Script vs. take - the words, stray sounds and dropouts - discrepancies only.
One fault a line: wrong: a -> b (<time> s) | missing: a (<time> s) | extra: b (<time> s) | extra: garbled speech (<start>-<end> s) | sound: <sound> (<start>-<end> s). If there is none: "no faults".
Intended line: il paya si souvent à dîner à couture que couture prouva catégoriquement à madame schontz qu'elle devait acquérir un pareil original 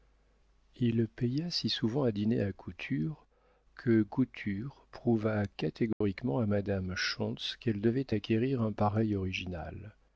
sound: dropout (5.9-6.0 s)